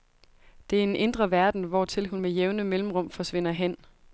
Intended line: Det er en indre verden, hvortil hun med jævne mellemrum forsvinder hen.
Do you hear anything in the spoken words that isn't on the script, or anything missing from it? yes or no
no